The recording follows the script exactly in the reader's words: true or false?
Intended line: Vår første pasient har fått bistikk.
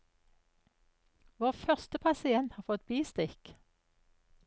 true